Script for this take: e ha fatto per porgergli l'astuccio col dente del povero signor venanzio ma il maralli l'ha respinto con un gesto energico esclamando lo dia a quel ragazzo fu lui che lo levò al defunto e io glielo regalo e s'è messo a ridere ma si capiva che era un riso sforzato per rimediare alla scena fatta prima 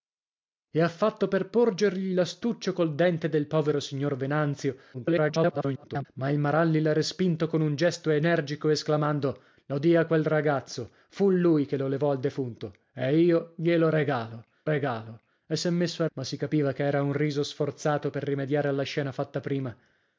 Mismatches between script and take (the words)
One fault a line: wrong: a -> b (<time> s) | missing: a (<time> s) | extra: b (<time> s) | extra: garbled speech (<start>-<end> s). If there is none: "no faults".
extra: garbled speech (4.9-6.1 s)
extra: regalo (14.6 s)
missing: ridere (16.1 s)